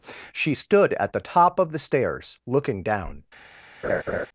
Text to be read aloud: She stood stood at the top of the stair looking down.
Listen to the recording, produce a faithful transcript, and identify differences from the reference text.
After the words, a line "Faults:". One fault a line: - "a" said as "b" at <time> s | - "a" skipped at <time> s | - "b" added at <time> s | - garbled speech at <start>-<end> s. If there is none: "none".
She stood at the top of the stairs looking down.
Faults:
- "stood" skipped at 0.9 s
- "stair" said as "stairs" at 1.8 s